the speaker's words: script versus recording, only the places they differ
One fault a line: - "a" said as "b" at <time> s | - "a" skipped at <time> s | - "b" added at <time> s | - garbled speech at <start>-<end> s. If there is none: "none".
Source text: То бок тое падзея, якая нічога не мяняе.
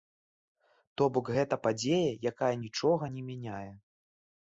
- "тое" said as "гэта" at 1.4 s